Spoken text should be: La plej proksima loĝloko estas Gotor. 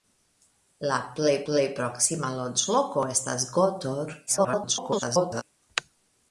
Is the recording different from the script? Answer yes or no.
yes